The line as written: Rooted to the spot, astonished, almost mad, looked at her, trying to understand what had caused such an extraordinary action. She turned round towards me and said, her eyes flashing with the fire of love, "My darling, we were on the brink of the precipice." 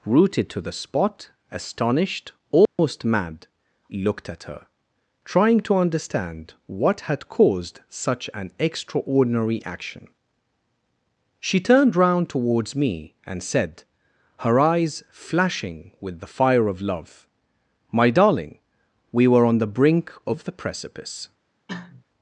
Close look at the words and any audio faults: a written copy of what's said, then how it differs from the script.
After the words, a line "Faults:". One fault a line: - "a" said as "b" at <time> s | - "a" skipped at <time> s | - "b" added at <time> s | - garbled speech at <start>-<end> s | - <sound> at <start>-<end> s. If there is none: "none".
Rooted to the spot, astonished, almost mad, looked at her, trying to understand what had caused such an extraordinary action. She turned round towards me and said, her eyes flashing with the fire of love, "My darling, we were on the brink of the precipice."
Faults:
- dropout at 2.7-2.8 s
- cough at 21.7-22.0 s